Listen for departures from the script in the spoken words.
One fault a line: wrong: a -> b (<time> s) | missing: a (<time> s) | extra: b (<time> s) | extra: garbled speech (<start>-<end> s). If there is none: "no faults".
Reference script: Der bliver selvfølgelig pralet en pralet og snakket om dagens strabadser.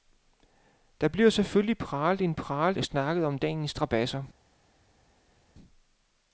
no faults